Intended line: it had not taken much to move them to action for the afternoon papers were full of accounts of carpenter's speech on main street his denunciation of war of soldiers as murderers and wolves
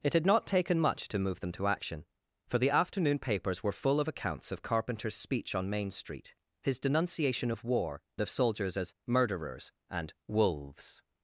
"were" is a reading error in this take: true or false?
false